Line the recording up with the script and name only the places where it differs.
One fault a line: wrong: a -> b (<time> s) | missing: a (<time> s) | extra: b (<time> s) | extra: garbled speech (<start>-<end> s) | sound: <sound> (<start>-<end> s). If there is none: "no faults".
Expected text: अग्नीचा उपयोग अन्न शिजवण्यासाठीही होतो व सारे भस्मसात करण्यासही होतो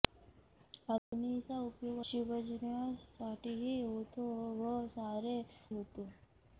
sound: dropout (1.0-1.1 s)
missing: अन्न (2.0 s)
missing: भस्मसात करण्यासही (5.4 s)